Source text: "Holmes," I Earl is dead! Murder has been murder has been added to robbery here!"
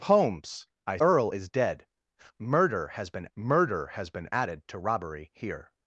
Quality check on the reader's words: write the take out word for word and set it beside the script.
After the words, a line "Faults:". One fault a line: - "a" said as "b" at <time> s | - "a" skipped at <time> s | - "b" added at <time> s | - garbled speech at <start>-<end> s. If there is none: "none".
"Holmes," I Earl is dead! Murder has been murder has been added to robbery here!"
Faults:
none